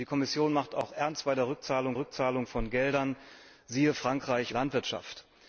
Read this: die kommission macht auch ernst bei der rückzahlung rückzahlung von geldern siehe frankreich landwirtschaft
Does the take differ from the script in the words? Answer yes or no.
no